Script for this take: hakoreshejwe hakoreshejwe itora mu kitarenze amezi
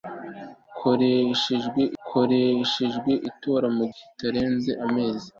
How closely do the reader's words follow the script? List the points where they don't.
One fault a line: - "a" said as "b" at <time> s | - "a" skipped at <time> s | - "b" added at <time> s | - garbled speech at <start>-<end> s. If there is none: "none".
none